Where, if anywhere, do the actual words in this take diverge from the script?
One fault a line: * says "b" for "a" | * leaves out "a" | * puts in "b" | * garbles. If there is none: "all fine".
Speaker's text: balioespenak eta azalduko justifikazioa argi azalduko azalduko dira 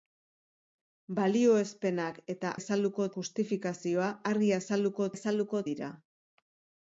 all fine